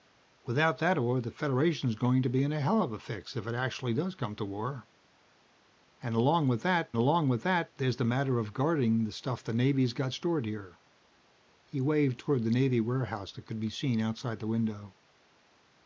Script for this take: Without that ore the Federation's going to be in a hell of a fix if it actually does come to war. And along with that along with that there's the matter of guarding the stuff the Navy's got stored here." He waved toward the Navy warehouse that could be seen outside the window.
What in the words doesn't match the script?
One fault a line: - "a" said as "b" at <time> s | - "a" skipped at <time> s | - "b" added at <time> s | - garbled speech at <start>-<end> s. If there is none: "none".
none